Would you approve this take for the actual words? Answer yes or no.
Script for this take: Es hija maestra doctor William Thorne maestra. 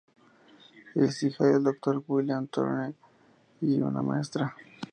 no